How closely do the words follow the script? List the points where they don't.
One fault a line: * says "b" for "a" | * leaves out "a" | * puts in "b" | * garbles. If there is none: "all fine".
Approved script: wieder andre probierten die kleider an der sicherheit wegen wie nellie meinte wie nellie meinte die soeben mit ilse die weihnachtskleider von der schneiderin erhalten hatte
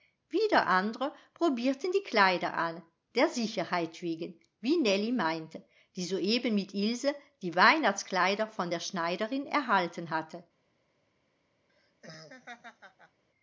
* leaves out "wie nellie meinte"